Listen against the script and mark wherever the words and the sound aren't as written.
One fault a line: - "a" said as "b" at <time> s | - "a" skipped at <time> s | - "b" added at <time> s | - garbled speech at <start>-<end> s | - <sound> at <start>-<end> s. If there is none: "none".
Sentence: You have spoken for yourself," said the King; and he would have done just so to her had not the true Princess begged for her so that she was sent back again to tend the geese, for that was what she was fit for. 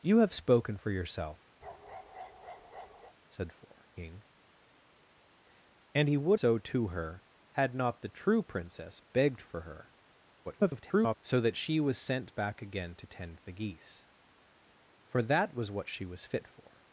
- bark at 1.6-3.1 s
- "the" said as "for" at 3.5 s
- "have done just" skipped at 6.4 s
- garbled speech at 10.4-11.2 s